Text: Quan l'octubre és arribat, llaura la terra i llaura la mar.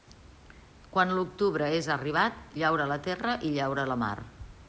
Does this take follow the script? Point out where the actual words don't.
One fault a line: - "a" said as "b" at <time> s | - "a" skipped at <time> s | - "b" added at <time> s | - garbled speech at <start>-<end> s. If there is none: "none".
none